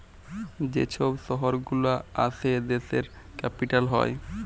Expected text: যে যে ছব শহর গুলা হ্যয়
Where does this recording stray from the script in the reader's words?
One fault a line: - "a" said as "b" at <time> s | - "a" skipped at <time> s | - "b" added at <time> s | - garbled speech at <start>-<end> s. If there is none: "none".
- "যে" skipped at 0.8 s
- "আসে দ্যাশের ক্যাপিটাল" added at 2.2 s